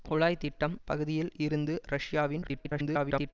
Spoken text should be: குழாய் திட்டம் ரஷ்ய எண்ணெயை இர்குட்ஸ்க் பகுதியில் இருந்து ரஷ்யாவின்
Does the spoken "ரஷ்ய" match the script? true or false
false